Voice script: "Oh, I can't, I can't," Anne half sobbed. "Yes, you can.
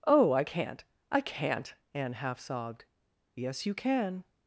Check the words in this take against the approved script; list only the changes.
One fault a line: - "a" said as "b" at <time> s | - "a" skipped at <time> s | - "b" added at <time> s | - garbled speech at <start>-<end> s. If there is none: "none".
none